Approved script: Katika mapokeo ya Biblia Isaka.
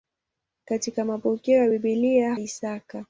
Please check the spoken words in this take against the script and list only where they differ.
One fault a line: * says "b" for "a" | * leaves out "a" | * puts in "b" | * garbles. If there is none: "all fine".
all fine